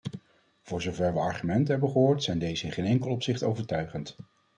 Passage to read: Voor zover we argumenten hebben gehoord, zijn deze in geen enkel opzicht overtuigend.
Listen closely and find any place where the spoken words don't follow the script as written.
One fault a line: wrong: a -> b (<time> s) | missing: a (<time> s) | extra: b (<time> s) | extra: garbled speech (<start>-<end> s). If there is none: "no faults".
no faults